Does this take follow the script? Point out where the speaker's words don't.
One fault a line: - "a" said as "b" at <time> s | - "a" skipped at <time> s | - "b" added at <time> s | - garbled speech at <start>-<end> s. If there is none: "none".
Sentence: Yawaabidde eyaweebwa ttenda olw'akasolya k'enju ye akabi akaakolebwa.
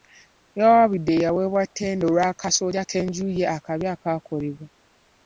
none